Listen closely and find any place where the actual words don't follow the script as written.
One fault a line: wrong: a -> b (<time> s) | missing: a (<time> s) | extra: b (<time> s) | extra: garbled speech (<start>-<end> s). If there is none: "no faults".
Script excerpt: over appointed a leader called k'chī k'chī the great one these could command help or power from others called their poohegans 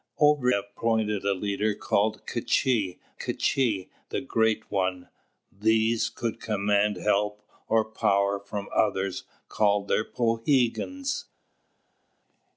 no faults